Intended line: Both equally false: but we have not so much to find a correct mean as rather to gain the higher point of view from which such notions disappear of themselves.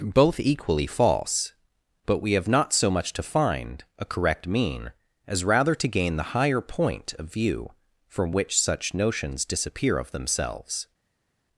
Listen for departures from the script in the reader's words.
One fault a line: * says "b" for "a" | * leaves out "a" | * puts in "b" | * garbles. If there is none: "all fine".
all fine